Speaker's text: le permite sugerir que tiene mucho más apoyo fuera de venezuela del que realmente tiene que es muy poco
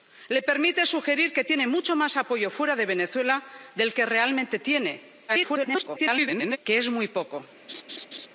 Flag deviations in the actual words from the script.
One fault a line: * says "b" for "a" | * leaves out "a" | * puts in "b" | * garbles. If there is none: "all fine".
* garbles